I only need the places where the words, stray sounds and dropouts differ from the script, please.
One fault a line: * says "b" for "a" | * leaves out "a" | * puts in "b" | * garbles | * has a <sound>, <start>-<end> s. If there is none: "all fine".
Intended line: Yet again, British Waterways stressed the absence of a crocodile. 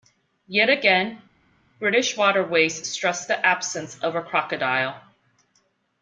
all fine